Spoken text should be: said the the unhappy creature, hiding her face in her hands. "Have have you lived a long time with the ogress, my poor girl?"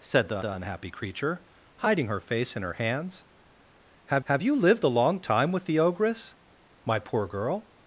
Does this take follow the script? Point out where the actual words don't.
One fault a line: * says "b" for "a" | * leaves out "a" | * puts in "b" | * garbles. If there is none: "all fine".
all fine